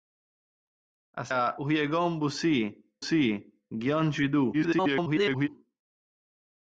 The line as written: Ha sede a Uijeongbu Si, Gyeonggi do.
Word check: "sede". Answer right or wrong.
wrong